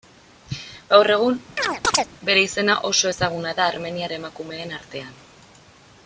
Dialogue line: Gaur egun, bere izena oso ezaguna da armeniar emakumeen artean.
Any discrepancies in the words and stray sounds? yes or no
yes